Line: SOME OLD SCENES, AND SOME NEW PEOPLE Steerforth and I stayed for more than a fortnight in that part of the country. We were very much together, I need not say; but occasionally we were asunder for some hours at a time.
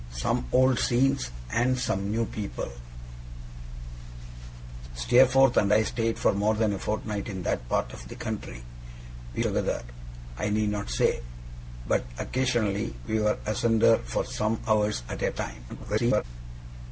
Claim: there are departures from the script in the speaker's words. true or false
true